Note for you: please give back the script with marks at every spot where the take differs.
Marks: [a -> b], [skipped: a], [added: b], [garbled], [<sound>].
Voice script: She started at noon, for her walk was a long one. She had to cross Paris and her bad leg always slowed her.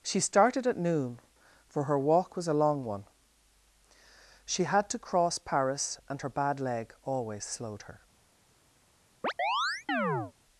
She started at noon, for her walk was a long one. She had to cross Paris and her bad leg always slowed her. [chirp]